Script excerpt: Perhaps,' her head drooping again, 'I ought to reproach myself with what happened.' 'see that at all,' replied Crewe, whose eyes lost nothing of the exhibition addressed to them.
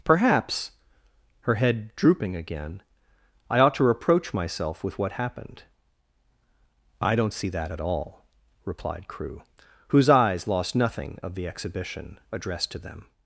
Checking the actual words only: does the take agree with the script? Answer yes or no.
no